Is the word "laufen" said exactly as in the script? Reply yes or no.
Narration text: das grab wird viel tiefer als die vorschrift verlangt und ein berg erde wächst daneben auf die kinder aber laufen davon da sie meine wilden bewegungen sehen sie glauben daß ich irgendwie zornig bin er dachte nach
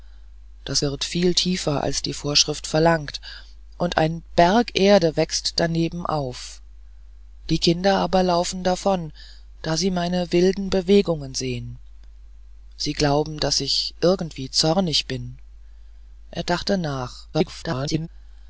yes